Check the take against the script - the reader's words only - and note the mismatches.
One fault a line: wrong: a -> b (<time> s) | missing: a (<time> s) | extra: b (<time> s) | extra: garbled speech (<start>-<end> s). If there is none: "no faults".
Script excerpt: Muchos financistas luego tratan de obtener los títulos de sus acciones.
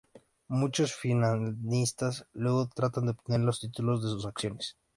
no faults